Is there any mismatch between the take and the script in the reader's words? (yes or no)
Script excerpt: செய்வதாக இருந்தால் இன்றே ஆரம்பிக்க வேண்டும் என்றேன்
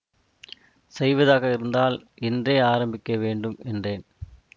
no